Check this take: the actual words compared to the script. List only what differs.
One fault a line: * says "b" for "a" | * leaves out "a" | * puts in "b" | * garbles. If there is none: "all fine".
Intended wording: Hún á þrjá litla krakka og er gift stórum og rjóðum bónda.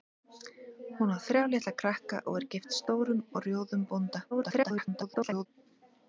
* garbles